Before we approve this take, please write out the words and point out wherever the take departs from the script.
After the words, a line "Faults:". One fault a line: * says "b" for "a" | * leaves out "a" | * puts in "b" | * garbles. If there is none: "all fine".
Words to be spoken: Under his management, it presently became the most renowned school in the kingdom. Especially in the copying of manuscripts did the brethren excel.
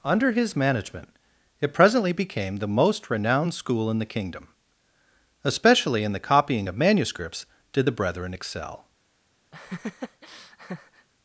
Under his management, it presently became the most renowned school in the kingdom. Especially in the copying of manuscripts did the brethren excel.
Faults:
all fine